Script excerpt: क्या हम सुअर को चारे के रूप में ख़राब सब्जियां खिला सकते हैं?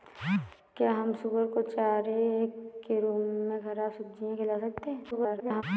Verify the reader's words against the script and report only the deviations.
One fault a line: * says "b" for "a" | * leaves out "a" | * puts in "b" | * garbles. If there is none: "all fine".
* garbles